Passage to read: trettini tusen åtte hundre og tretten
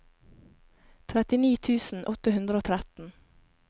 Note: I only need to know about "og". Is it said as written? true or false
true